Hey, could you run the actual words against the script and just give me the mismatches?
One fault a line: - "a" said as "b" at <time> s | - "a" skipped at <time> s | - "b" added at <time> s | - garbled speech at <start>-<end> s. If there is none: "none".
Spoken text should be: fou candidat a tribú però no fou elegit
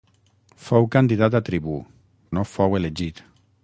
- "però" skipped at 1.8 s